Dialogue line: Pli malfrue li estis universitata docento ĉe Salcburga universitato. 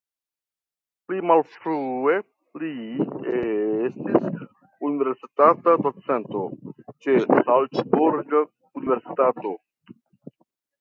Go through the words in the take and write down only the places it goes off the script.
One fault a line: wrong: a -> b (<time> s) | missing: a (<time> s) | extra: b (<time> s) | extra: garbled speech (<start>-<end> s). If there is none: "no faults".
no faults